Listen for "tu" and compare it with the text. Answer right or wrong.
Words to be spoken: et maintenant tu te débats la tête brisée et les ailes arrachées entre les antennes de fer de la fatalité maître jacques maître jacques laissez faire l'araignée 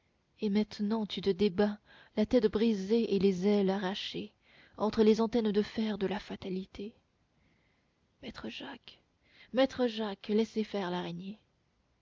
right